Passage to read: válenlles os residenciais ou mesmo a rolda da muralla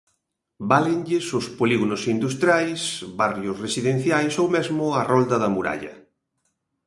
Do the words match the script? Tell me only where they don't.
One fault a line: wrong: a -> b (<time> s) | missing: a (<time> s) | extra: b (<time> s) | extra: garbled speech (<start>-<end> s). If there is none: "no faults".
extra: polígonos industriais barrios (1.6 s)